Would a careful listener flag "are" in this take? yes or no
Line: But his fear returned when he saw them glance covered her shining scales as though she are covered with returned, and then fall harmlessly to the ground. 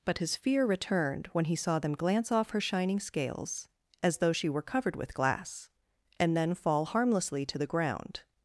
yes